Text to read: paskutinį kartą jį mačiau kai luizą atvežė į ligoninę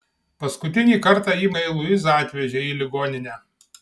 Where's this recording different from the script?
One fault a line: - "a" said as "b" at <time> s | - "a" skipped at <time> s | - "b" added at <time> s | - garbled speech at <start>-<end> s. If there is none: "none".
- "mačiau" skipped at 1.5 s